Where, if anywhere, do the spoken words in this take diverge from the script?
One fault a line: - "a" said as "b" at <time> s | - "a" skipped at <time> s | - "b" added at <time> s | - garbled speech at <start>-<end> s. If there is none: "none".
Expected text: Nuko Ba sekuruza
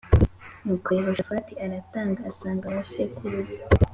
- "Yehoshafati aratanga asanga" added at 1.0 s